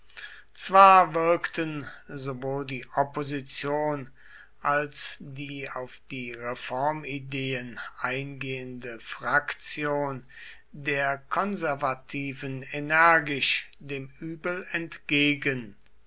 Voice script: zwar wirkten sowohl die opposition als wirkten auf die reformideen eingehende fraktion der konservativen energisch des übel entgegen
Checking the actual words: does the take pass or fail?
fail